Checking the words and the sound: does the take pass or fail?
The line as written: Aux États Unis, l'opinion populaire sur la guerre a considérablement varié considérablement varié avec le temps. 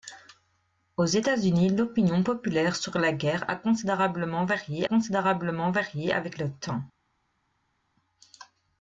pass